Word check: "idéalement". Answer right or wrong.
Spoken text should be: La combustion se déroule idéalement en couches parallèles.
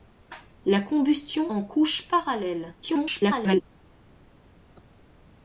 wrong